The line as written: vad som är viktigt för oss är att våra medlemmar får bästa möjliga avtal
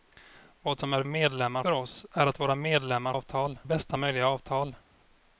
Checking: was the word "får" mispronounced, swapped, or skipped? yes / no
yes